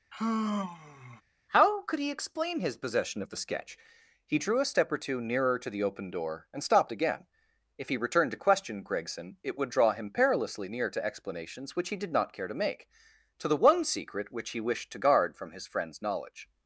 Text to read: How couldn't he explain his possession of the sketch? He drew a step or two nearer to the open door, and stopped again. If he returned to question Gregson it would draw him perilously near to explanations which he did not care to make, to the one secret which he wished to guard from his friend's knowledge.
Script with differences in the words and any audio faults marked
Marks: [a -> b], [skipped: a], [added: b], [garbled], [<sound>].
[sigh] How [couldn't -> could] he explain his possession of the sketch? He drew a step or two nearer to the open door, and stopped again. If he returned to question Gregson it would draw him perilously near to explanations which he did not care to make, to the one secret which he wished to guard from his friend's knowledge.